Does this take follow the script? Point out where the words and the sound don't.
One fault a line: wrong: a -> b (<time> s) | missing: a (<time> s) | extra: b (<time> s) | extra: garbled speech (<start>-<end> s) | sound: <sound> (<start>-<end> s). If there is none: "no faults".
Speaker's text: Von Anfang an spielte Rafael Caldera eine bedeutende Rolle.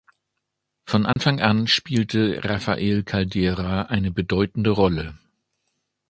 sound: dropout (1.1-1.2 s)